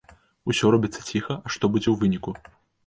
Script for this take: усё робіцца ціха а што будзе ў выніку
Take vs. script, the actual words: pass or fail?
pass